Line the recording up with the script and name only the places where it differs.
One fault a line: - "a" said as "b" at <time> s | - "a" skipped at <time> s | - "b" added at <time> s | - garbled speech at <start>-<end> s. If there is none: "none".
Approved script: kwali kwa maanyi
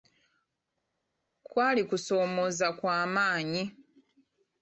- "kusoomooza" added at 1.8 s